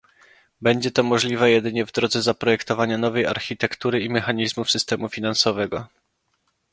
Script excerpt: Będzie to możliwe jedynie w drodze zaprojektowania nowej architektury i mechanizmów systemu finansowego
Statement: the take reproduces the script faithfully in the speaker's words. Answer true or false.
true